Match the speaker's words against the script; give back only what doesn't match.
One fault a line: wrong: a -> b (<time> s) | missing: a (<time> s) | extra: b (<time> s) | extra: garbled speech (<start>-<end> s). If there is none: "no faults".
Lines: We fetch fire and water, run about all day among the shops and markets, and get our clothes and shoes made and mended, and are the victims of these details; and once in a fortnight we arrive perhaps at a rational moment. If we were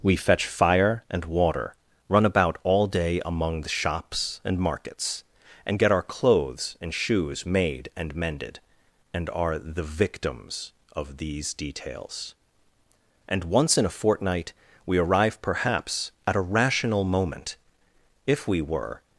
no faults